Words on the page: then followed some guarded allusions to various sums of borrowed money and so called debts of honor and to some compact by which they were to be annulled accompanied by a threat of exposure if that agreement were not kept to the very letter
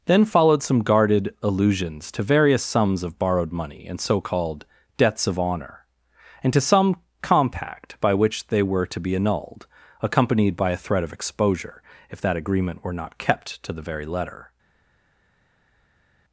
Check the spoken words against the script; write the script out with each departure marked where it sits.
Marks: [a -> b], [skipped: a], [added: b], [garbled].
then followed some guarded allusions to various sums of borrowed money and so called debts of honor and to some compact by which they were to be annulled accompanied by a threat of exposure if that agreement were not kept to the very letter